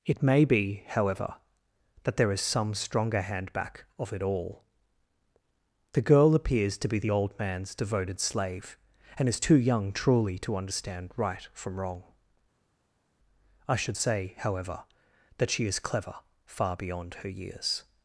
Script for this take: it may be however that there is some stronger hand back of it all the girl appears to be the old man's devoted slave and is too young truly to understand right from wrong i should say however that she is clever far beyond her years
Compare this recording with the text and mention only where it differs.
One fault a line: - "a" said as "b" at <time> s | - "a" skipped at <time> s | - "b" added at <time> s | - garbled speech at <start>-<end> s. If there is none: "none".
none